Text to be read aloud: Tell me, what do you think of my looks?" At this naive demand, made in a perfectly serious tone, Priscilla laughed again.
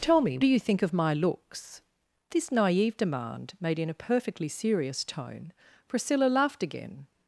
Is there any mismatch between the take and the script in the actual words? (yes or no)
yes